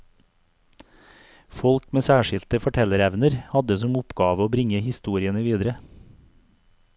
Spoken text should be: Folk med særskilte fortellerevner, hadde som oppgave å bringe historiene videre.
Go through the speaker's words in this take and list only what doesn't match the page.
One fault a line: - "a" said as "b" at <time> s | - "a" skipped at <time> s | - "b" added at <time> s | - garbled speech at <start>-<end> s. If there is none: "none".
none